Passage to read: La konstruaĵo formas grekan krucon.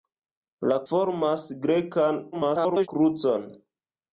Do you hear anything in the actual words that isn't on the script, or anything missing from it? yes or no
yes